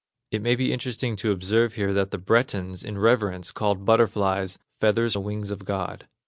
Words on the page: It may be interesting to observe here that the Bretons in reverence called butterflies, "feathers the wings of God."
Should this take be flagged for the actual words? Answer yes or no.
no